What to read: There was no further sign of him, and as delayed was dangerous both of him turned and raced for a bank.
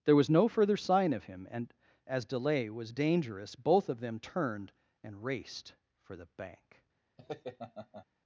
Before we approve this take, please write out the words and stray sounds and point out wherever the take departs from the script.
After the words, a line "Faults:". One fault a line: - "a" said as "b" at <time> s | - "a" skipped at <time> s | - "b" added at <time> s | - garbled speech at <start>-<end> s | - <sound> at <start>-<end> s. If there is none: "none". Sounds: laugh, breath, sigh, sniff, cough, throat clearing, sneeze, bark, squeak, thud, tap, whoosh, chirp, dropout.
There was no further sign of him, and as delay was dangerous both of them turned and raced for the bank.
Faults:
- "delayed" said as "delay" at 2.2 s
- "him" said as "them" at 4.0 s
- "a" said as "the" at 6.1 s
- laugh at 7.2-8.1 s